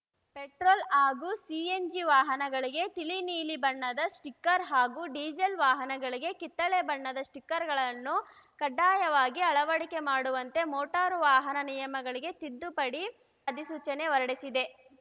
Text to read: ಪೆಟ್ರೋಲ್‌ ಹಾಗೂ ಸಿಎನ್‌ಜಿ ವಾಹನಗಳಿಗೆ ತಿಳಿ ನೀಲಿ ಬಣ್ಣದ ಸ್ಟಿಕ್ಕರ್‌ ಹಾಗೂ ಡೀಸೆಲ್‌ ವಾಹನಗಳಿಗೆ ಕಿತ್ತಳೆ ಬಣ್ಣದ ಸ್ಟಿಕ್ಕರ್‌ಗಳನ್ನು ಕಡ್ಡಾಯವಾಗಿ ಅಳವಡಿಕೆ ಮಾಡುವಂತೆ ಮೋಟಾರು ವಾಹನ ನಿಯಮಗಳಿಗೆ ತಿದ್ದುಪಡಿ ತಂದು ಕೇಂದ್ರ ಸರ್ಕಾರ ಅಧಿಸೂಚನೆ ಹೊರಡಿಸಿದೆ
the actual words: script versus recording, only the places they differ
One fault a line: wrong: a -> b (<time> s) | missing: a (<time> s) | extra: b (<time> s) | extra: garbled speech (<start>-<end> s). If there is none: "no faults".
missing: ತಂದು ಕೇಂದ್ರ ಸರ್ಕಾರ (13.0 s)